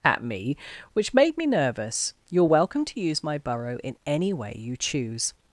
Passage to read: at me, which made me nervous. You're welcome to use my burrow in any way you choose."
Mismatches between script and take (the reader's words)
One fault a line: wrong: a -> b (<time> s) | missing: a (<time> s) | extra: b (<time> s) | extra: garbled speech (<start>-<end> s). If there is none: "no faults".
no faults